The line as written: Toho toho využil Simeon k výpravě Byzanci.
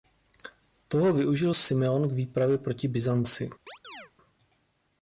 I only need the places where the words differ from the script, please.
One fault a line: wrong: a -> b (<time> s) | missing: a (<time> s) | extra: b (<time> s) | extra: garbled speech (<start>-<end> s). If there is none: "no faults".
missing: toho (1.1 s)
extra: proti (2.6 s)